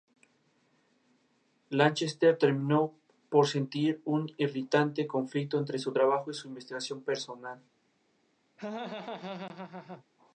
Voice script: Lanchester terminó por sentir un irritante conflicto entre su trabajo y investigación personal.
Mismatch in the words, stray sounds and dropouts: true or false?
true